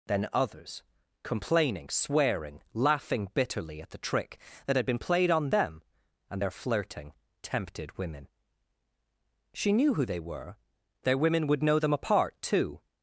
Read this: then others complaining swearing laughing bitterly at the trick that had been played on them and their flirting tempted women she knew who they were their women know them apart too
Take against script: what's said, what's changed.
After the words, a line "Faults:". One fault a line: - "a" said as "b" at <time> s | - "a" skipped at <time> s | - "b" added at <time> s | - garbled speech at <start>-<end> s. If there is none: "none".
then others complaining swearing laughing bitterly at the trick that had been played on them and their flirting tempted women she knew who they were their women would know them apart too
Faults:
- "would" added at 11.5 s